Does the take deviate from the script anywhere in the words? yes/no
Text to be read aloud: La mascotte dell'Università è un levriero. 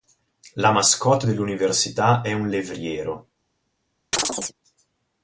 no